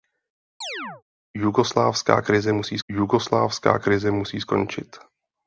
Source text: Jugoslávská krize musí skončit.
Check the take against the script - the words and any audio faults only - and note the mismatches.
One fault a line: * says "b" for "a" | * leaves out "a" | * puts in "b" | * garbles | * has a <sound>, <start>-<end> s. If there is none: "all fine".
* has a chirp, 0.6-1.0 s
* puts in "jugoslávská krize musí"